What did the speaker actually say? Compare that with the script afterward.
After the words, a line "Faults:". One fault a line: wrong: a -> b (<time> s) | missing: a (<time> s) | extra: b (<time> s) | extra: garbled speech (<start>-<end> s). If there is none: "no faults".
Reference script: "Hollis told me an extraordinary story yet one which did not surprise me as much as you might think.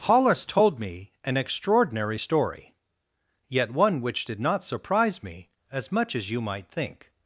"Hollis told me an extraordinary story yet one which did not surprise me as much as you might think.
Faults:
no faults